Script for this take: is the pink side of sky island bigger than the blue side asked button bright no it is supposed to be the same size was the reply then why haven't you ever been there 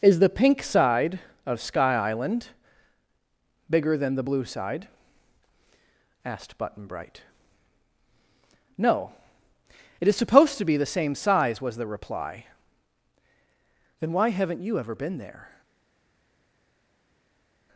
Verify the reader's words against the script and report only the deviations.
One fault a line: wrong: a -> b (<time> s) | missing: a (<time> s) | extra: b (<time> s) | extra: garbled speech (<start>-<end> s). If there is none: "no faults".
no faults